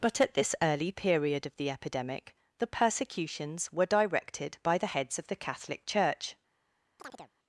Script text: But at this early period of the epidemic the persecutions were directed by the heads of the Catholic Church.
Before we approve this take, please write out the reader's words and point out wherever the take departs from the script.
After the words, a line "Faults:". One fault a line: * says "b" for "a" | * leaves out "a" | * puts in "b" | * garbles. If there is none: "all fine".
But at this early period of the epidemic the persecutions were directed by the heads of the Catholic Church.
Faults:
all fine